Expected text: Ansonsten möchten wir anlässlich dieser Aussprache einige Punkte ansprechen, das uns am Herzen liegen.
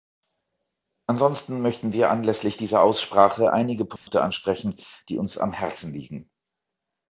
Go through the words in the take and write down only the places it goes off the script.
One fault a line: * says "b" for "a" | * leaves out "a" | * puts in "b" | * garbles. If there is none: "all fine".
* says "die" for "das"